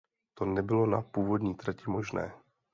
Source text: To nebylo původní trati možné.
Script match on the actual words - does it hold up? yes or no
no